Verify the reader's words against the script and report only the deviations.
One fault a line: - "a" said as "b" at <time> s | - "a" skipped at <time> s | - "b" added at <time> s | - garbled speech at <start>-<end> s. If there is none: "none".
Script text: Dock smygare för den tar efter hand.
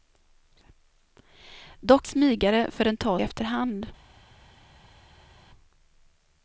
none